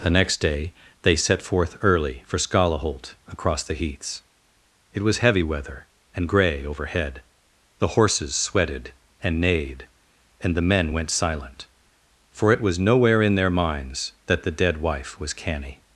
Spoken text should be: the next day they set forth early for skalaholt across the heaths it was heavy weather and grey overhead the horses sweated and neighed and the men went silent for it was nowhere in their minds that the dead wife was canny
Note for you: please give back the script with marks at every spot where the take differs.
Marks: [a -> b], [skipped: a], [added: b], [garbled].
the next day they set forth early for skalaholt across the heaths it was heavy weather and grey overhead the horses sweated and neighed and the men went silent for it was nowhere in their minds that the dead wife was canny